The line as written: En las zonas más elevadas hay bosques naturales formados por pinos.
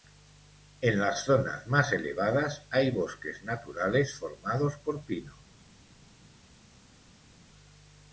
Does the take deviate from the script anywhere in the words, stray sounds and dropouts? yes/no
no